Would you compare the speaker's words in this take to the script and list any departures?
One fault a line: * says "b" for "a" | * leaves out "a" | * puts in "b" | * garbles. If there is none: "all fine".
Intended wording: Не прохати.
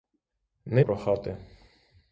all fine